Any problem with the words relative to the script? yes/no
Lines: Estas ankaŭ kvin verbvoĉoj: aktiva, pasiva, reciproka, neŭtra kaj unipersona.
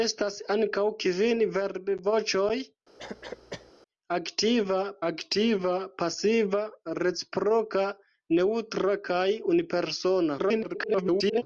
yes